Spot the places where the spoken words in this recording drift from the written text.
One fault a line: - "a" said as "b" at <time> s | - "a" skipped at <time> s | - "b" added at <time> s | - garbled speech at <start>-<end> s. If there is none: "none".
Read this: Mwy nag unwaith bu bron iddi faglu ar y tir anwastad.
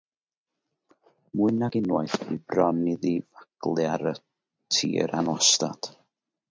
none